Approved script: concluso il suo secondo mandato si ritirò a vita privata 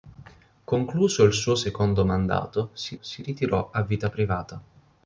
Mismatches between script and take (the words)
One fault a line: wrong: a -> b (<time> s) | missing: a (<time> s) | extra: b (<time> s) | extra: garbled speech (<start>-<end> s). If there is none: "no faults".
extra: si (3.0 s)